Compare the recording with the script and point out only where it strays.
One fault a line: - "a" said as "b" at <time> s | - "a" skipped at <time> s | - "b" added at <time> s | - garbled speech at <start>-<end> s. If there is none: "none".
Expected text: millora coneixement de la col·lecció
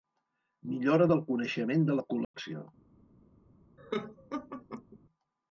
- "del" added at 1.1 s